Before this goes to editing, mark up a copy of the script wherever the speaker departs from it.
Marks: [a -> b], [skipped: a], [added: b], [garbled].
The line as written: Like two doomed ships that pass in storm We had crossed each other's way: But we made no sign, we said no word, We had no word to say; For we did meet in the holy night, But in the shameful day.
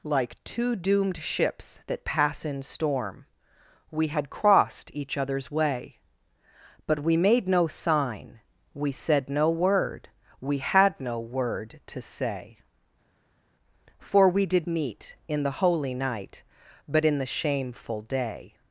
Like two doomed ships that pass in storm We had crossed each other's way: But we made no sign, we said no word, We had no word to say; For we did meet in the holy night, But in the shameful day.